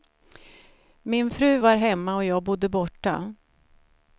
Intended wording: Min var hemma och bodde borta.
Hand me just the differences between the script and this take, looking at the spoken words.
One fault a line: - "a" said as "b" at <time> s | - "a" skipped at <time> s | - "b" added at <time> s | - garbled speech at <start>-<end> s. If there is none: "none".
- "fru" added at 1.3 s
- "jag" added at 2.2 s